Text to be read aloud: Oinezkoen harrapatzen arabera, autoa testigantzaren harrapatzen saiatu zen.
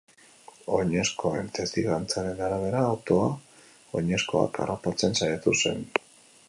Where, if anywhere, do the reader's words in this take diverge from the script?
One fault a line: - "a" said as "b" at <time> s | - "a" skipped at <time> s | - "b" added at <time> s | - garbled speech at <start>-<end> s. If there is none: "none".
- "harrapatzen" said as "testigantzaren" at 1.6 s
- "testigantzaren" said as "oinezkoak" at 4.0 s